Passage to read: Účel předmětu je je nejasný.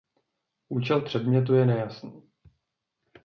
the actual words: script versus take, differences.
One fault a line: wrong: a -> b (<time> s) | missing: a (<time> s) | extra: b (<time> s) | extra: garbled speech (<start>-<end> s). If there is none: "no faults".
missing: je (1.7 s)